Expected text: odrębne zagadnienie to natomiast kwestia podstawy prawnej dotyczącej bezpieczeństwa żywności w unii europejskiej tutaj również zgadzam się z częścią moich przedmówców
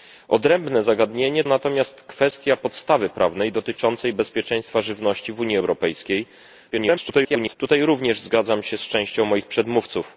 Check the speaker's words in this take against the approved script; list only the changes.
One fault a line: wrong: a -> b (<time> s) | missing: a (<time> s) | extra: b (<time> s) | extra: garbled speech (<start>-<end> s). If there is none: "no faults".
missing: to (1.4 s)
extra: garbled speech (6.7-7.6 s)